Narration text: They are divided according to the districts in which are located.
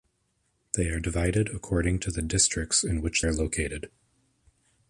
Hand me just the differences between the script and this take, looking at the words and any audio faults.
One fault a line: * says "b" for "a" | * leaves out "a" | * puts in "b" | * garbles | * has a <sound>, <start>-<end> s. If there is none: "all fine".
all fine